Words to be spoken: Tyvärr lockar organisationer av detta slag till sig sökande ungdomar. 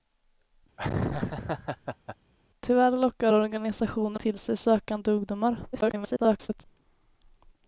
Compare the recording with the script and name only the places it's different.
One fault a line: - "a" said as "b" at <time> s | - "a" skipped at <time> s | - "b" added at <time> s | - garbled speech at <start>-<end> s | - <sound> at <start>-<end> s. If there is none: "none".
- laugh at 0.8-2.2 s
- "av detta slag" skipped at 4.2 s
- garbled speech at 5.7-6.6 s